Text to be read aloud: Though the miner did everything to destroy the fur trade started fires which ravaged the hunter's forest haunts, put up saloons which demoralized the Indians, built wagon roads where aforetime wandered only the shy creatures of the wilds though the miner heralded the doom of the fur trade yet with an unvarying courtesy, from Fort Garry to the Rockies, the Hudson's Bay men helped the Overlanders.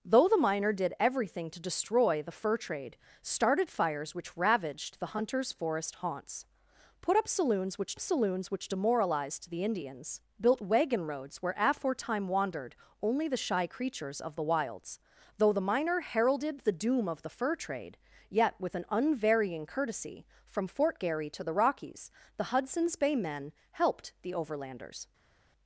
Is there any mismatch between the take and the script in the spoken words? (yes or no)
yes